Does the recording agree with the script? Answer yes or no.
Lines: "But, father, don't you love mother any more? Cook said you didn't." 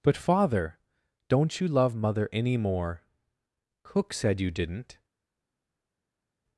yes